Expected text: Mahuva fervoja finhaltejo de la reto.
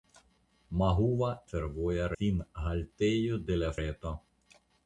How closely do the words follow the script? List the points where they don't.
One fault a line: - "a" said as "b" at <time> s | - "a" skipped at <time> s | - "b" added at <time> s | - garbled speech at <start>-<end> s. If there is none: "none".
none